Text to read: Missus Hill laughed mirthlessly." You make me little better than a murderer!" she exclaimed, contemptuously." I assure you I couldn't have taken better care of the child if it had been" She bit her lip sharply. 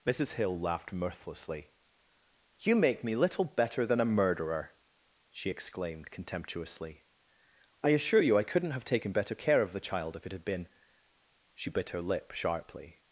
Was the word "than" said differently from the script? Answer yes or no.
no